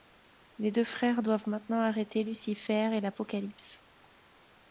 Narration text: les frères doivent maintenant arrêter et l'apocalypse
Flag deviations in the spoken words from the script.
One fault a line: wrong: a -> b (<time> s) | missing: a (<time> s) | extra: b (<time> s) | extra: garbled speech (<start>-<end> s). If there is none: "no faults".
extra: deux (0.7 s)
extra: lucifer (2.2 s)